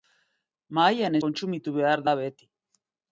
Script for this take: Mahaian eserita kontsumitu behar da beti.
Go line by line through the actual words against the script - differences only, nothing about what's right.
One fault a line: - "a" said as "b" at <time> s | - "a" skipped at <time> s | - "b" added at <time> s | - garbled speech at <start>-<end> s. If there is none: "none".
- "eserita" skipped at 1.2 s